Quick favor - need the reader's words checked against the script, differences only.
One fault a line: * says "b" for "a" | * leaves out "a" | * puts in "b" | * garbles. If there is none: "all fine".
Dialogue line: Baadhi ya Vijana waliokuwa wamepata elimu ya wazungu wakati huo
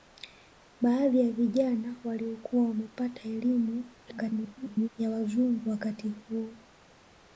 * garbles